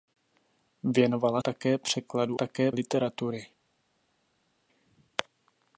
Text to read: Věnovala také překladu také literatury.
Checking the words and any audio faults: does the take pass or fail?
pass